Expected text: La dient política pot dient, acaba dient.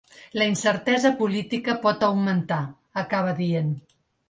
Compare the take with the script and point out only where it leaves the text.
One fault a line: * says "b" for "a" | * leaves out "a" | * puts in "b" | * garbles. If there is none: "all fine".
* says "incertesa" for "dient"
* says "augmentar" for "dient"